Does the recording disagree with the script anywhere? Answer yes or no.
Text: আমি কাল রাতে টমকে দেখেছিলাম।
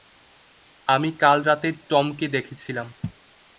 no